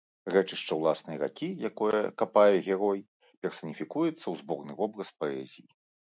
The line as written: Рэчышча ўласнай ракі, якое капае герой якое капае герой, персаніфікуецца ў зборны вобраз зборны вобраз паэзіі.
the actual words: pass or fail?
fail